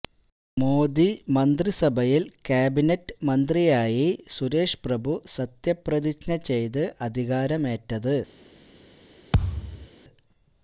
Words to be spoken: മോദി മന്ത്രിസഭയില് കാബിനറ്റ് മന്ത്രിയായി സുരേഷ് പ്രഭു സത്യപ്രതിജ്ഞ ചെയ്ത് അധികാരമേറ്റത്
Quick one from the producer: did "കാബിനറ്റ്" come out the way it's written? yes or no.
yes